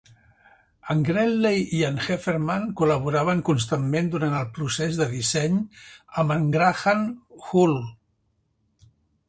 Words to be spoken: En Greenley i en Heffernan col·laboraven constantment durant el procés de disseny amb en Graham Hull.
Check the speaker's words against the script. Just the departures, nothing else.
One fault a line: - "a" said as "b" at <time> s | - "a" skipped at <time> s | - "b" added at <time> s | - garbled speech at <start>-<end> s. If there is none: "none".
none